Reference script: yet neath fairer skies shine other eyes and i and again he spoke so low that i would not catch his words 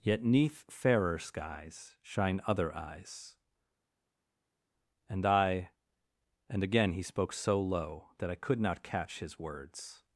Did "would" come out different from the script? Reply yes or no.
yes